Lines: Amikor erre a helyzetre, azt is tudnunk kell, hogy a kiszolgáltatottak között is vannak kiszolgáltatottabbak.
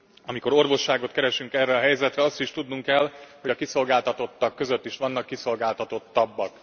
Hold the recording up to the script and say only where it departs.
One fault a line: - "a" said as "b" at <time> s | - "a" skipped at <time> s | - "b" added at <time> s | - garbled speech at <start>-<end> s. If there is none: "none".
- "orvosságot keresünk" added at 0.5 s